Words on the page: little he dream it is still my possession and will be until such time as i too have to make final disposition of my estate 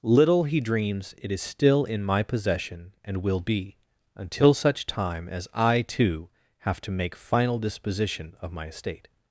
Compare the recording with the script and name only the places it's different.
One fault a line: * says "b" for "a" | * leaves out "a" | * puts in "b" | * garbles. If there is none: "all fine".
* says "dreams" for "dream"
* puts in "in"